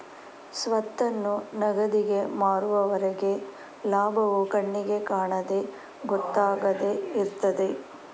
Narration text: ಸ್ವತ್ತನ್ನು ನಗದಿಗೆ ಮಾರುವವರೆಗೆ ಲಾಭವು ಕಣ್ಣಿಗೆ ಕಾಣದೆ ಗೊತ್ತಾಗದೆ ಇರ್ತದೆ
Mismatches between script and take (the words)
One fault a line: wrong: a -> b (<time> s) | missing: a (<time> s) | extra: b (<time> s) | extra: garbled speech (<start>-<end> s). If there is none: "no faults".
no faults